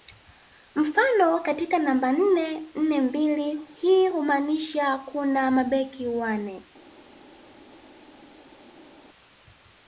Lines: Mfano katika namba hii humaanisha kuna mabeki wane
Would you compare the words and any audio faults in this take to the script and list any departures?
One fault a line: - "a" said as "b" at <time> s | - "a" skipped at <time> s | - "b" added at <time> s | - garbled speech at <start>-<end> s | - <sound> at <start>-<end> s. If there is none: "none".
- "nne nne mbili" added at 2.1 s